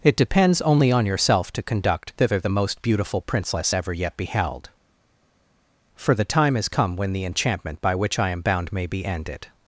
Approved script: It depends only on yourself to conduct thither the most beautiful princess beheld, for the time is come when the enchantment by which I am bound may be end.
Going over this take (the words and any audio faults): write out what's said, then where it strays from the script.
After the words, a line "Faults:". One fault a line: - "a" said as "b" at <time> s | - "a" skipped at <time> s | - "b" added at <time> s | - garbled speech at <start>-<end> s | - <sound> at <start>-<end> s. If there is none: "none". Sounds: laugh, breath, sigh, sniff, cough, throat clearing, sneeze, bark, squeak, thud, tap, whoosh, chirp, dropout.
It depends only on yourself to conduct thither the most beautiful princess ever yet beheld, for the time is come when the enchantment by which I am bound may be ended.
Faults:
- "ever yet" added at 3.7 s
- "end" said as "ended" at 9.0 s